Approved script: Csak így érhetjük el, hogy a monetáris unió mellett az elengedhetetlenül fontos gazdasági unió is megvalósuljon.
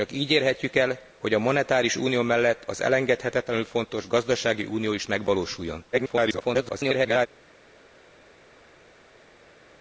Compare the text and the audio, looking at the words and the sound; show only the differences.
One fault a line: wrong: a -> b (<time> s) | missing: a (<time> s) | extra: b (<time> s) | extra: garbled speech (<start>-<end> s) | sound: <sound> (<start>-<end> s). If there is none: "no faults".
extra: garbled speech (5.9-7.3 s)